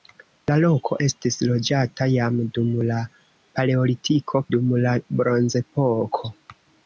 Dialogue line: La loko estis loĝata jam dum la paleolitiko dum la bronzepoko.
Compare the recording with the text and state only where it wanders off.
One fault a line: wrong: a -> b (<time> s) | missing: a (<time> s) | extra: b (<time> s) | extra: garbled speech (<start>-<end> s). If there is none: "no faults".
no faults